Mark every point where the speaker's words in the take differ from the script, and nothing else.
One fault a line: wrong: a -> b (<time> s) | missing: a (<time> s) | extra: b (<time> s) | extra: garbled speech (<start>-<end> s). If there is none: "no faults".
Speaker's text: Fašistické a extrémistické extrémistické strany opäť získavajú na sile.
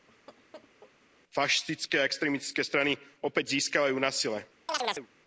missing: extrémistické (2.6 s)